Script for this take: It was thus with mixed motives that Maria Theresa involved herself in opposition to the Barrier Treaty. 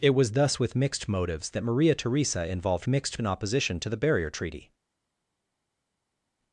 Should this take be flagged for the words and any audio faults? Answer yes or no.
yes